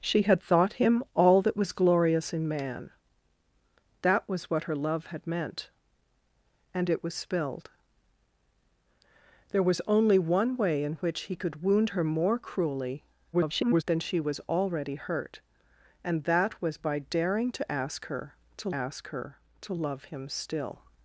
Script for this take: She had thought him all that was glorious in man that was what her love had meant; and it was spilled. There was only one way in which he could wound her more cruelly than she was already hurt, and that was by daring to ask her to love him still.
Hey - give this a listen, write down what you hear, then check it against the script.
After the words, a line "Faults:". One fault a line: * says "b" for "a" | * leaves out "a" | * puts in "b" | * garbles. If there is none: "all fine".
She had thought him all that was glorious in man that was what her love had meant; and it was spilled. There was only one way in which he could wound her more cruelly [garbled] than she was already hurt, and that was by daring to ask her to ask her to love him still.
Faults:
* garbles
* puts in "ask her to"